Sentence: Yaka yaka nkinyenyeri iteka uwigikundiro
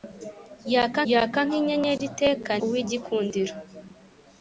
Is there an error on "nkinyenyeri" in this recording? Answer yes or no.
no